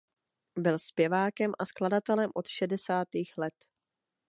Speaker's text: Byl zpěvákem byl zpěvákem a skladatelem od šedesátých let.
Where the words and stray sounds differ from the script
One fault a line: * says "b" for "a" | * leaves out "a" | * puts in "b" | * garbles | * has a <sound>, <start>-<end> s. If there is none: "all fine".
* leaves out "byl zpěvákem"